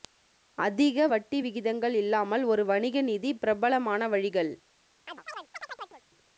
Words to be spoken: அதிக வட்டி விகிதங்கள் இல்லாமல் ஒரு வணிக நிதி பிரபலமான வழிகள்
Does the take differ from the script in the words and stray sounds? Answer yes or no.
yes